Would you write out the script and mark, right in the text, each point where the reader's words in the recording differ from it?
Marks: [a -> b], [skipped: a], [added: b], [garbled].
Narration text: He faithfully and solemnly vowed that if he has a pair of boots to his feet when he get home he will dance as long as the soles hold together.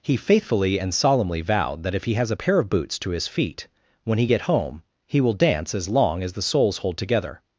He faithfully and solemnly vowed that if he has a pair of boots to his feet when he get home he will dance as long as the soles hold together.